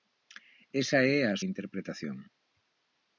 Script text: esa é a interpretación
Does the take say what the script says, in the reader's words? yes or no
yes